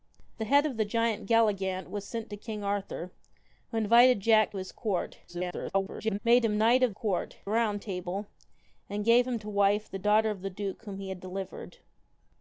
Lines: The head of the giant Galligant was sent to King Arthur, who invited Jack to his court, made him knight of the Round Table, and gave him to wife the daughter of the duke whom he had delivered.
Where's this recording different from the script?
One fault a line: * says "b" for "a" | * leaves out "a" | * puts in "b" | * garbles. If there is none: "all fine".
* leaves out "to"
* garbles
* says "court" for "the"